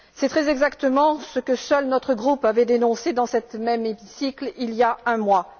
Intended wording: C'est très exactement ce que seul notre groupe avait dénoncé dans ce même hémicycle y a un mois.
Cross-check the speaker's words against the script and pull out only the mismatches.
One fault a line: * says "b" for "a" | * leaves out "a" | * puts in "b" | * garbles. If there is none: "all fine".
* puts in "il"